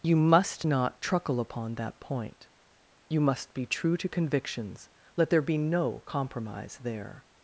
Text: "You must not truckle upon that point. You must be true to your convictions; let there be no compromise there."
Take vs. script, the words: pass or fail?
fail